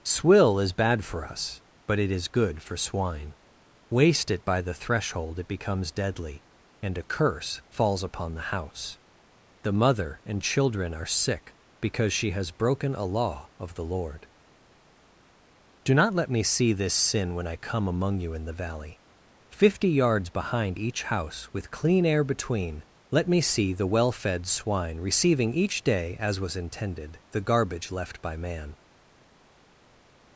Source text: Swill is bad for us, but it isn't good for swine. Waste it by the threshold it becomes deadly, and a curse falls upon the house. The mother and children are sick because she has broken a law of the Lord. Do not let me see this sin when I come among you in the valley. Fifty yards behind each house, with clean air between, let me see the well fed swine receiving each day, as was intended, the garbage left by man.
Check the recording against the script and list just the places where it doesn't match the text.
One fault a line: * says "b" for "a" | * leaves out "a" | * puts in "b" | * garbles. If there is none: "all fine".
* says "is" for "isn't"